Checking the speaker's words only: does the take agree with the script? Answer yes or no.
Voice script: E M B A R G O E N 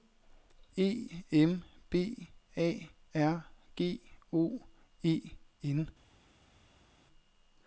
yes